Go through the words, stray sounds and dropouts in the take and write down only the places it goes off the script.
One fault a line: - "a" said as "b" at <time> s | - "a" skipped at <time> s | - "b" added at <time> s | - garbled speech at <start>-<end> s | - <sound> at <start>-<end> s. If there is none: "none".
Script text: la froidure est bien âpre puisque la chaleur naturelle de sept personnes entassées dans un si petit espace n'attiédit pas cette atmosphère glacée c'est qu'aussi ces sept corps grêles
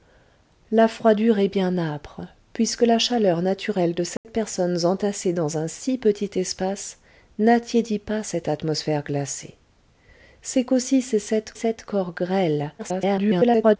- dropout at 4.2-4.2 s
- "sept" added at 11.5 s
- garbled speech at 12.8-13.8 s